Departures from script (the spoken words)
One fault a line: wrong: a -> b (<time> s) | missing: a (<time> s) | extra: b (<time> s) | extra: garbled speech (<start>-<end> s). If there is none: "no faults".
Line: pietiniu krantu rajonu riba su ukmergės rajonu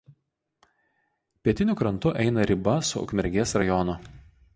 wrong: rajonu -> eina (2.2 s)